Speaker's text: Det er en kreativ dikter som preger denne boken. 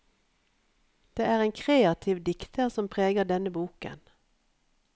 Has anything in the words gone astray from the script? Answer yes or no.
no